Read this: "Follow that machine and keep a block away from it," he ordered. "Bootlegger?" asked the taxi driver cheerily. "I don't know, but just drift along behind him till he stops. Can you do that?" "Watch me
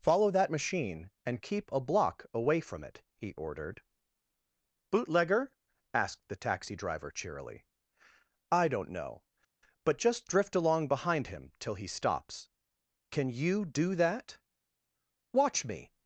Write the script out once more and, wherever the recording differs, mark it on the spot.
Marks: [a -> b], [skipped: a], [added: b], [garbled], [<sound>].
"Follow that machine and keep a block away from it," he ordered. "Bootlegger?" asked the taxi driver cheerily. "I don't know, but just drift along behind him till he stops. Can you do that?" "Watch me